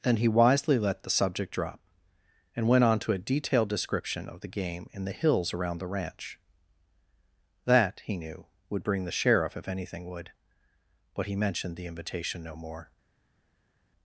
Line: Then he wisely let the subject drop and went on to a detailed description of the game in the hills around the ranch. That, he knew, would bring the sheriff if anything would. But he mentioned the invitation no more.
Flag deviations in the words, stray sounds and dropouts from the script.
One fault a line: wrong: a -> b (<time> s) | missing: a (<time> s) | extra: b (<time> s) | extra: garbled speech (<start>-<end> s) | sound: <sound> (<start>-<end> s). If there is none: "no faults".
no faults